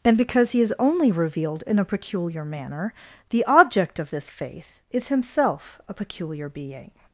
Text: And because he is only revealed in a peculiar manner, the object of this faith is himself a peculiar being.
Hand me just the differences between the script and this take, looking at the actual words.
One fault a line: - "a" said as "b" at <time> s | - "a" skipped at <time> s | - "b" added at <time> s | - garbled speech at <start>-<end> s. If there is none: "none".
none